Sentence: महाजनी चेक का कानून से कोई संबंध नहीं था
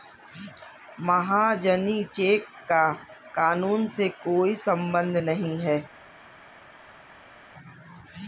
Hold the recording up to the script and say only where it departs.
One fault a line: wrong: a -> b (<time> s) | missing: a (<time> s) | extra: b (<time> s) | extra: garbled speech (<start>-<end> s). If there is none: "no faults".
wrong: था -> है (5.6 s)